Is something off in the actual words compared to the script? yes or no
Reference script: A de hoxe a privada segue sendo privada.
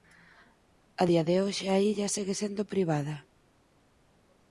yes